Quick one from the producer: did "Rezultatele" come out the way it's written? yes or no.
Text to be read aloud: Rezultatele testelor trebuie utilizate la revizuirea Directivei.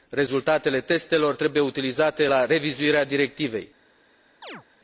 yes